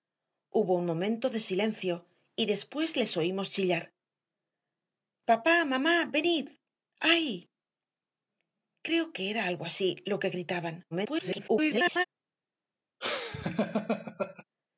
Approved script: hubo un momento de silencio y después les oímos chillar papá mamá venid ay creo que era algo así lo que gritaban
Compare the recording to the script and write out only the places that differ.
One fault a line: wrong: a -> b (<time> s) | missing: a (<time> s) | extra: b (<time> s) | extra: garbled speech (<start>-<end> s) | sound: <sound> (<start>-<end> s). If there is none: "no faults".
extra: garbled speech (10.9-12.0 s)
sound: laugh (13.0-14.4 s)